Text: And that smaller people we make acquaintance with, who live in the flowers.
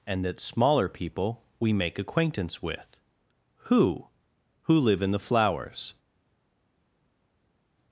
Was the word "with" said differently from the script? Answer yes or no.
no